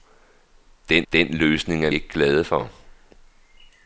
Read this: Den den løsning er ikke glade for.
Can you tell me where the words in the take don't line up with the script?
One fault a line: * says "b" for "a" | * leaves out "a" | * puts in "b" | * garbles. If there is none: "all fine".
all fine